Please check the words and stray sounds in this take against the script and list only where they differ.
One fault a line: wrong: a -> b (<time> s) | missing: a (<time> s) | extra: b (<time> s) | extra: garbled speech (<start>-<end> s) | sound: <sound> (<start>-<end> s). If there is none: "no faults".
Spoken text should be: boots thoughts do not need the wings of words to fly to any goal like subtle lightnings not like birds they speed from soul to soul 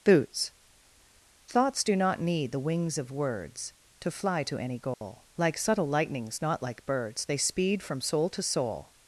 sound: dropout (4.9-5.0 s)